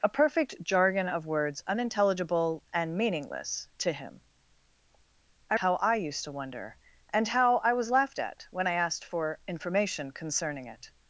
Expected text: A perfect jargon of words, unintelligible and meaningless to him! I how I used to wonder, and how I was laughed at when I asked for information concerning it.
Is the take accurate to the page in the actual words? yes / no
yes